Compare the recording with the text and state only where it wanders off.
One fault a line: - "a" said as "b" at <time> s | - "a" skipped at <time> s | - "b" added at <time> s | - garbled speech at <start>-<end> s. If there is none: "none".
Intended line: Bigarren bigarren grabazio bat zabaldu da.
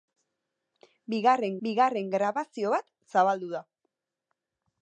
none